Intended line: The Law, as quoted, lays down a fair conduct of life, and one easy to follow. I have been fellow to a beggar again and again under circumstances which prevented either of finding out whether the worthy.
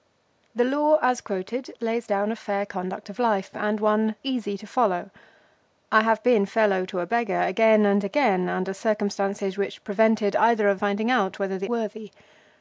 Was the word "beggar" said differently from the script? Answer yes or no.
no